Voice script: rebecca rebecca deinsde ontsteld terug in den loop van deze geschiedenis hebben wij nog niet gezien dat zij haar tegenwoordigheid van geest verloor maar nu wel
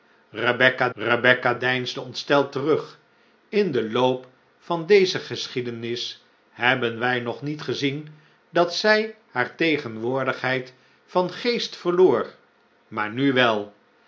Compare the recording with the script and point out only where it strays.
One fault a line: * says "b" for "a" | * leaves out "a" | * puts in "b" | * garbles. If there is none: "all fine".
all fine